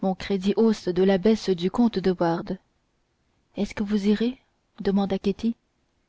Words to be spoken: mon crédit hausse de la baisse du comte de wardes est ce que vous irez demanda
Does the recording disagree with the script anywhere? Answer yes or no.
no